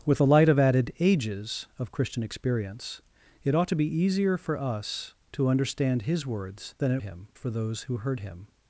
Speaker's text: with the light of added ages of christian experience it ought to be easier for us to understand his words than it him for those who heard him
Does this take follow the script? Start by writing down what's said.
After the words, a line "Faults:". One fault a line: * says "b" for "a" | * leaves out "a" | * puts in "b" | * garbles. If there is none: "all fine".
with the light of added ages of christian experience it ought to be easier for us to understand his words than it him for those who heard him
Faults:
all fine